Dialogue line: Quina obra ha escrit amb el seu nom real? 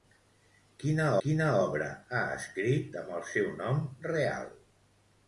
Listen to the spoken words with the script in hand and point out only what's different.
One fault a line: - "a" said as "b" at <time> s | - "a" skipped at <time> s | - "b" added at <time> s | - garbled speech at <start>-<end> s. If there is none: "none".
- "quina" added at 1.2 s